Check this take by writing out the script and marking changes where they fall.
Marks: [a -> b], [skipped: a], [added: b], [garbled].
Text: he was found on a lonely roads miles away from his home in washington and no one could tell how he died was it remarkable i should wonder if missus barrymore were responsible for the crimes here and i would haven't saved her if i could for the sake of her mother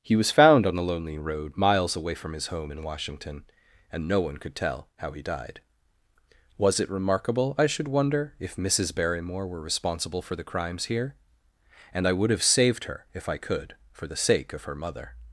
he was found on a lonely [roads -> road] miles away from his home in washington and no one could tell how he died was it remarkable i should wonder if missus barrymore were responsible for the crimes here and i would [haven't -> have] saved her if i could for the sake of her mother